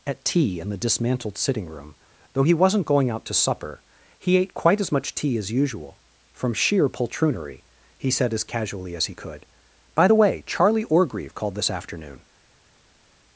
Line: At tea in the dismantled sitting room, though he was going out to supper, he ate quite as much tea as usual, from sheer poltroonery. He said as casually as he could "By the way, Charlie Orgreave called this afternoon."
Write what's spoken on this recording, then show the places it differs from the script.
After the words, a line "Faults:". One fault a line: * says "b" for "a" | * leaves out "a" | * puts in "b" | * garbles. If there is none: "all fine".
At tea in the dismantled sitting room, though he wasn't going out to supper, he ate quite as much tea as usual, from sheer poltroonery. He said as casually as he could "By the way, Charlie Orgreave called this afternoon."
Faults:
* says "wasn't" for "was"